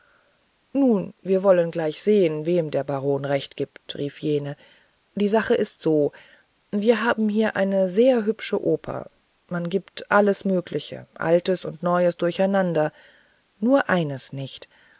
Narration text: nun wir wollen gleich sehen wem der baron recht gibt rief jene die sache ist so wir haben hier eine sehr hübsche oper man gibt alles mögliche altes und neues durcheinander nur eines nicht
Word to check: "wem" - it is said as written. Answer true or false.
true